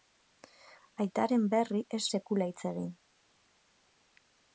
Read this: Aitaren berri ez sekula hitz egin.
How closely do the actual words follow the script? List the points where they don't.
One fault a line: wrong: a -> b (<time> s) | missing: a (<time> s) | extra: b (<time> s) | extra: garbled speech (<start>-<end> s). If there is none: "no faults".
no faults